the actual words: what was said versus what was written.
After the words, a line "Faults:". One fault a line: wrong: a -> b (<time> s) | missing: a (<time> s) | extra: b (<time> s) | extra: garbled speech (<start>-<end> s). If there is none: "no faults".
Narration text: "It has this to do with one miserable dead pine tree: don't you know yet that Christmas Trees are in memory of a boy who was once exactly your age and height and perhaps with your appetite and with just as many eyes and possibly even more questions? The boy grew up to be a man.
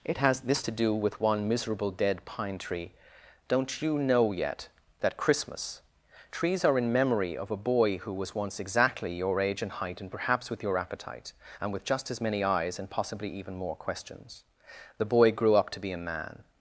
"It has this to do with one miserable dead pine tree: don't you know yet that Christmas Trees are in memory of a boy who was once exactly your age and height and perhaps with your appetite and with just as many eyes and possibly even more questions? The boy grew up to be a man.
Faults:
no faults